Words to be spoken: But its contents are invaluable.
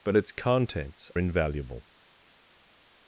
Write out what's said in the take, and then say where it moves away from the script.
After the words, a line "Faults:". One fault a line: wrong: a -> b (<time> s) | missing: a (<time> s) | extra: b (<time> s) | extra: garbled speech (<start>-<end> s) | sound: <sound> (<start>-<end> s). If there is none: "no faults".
But its contents invaluable.
Faults:
missing: are (1.1 s)